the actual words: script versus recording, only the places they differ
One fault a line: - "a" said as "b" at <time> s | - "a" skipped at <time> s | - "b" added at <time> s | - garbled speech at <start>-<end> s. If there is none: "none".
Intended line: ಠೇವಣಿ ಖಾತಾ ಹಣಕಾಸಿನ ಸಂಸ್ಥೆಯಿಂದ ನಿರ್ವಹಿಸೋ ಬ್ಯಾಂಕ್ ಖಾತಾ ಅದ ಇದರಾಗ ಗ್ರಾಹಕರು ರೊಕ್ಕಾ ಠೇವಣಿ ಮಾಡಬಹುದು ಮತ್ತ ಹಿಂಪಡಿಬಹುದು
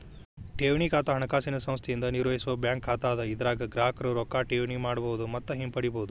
none